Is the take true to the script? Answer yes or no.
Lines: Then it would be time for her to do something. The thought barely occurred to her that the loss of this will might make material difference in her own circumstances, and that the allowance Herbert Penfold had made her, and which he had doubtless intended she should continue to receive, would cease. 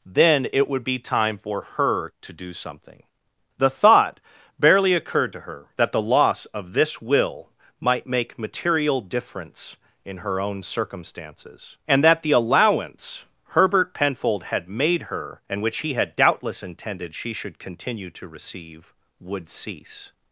yes